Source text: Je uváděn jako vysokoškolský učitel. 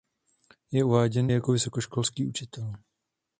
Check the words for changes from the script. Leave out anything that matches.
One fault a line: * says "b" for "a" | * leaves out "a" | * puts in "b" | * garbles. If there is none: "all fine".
all fine